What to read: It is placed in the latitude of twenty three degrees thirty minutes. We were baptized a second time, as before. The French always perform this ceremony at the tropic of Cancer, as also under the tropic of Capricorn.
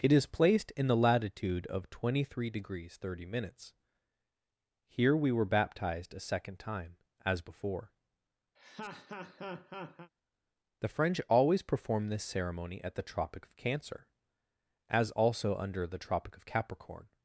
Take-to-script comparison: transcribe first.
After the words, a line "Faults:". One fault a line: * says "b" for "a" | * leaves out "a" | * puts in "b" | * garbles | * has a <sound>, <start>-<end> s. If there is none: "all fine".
It is placed in the latitude of twenty three degrees thirty minutes. Here we were baptized a second time, as before. The French always perform this ceremony at the tropic of Cancer, as also under the tropic of Capricorn.
Faults:
* puts in "Here"
* has a laugh, 8.6-10.1 s